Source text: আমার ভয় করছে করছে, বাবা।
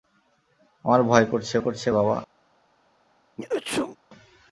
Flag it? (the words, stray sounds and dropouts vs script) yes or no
yes